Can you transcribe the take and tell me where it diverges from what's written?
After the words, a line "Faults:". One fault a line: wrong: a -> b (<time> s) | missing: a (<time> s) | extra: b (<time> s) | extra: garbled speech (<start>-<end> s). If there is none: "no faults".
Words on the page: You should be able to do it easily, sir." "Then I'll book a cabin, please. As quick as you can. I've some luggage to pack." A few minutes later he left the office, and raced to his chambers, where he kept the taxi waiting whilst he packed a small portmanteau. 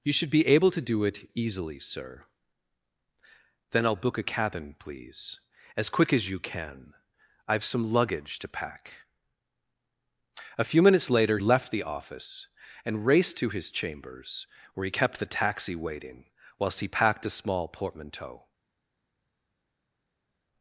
You should be able to do it easily, sir." "Then I'll book a cabin, please. As quick as you can. I've some luggage to pack." A few minutes later left the office, and raced to his chambers, where he kept the taxi waiting whilst he packed a small portmanteau.
Faults:
missing: he (11.4 s)